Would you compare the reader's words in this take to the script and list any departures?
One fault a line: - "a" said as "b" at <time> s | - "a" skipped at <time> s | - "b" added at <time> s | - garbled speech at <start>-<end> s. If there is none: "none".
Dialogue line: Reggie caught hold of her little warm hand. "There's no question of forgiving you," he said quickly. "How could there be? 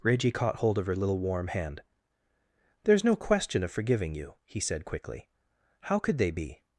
- "there" said as "they" at 6.2 s